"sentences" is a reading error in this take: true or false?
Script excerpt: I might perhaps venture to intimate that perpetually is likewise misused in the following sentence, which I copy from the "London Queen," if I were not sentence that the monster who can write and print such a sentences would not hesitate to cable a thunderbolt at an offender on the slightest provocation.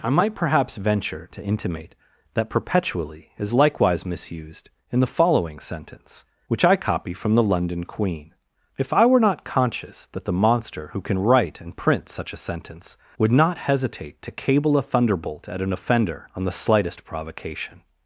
true